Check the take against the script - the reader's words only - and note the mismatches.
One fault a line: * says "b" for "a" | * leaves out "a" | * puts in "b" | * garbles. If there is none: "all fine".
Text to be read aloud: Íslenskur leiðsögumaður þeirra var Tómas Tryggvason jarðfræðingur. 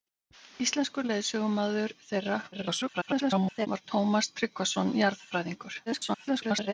* garbles
* garbles